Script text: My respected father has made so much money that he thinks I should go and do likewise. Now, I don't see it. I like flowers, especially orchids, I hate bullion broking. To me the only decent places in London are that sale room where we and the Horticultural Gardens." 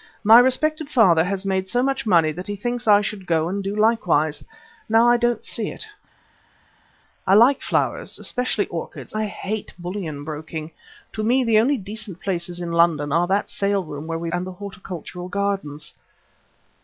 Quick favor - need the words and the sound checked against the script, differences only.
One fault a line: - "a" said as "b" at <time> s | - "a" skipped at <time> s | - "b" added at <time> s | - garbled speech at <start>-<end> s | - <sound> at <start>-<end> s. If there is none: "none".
none